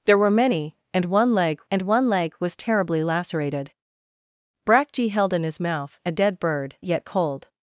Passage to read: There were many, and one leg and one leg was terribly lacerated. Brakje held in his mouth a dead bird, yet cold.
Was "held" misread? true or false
false